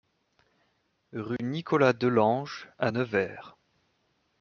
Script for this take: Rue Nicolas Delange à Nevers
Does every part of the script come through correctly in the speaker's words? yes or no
yes